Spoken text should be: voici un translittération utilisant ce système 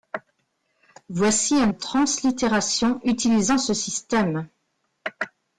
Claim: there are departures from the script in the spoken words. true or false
false